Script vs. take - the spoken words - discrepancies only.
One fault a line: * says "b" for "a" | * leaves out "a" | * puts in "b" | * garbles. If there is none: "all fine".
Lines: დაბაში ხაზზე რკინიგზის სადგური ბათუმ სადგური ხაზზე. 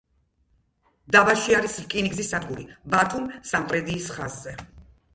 * says "არის" for "ხაზზე"
* says "სამტრედიის" for "სადგური"